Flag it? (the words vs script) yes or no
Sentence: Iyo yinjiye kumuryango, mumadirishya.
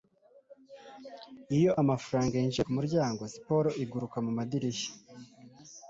yes